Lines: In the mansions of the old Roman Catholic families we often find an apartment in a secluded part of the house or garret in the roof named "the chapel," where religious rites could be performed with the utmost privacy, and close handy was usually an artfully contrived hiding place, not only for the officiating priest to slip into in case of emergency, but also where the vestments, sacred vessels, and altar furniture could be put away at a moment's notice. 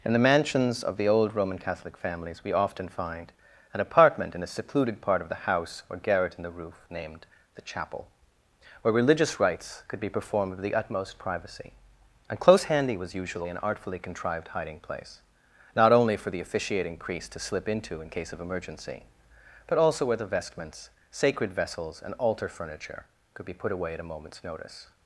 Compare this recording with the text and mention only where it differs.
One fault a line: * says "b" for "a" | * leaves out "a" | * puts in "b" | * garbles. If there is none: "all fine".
all fine